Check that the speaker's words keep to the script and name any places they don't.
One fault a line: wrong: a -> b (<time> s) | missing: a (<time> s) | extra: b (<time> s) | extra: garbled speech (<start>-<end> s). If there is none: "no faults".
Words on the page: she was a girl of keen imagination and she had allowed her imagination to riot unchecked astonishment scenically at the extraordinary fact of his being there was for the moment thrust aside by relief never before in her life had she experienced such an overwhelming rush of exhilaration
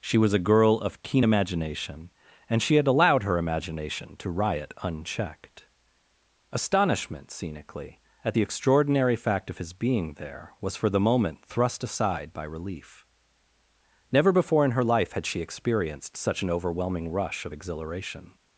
no faults